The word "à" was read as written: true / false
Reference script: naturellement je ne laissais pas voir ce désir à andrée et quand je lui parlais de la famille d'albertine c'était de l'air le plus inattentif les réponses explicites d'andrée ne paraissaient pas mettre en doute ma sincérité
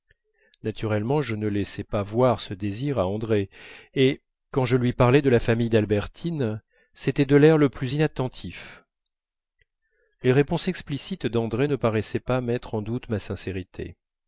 true